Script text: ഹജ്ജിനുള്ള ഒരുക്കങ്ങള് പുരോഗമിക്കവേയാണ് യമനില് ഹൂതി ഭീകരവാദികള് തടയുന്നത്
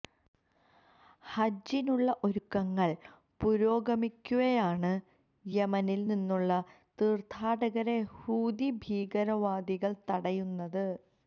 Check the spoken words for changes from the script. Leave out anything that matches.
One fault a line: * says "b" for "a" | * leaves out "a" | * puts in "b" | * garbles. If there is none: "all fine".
* puts in "നിന്നുള്ള തീര്ഥാടകരെ"